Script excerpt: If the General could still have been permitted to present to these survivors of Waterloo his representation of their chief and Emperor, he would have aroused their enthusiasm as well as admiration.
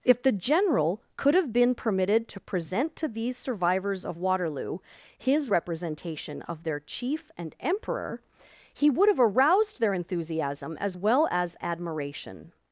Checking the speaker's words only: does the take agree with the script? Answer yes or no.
no